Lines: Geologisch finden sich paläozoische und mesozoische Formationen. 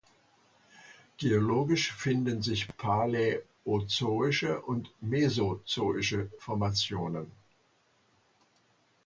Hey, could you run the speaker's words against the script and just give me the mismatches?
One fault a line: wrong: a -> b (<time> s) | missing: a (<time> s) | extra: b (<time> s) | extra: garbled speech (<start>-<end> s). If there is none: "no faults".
no faults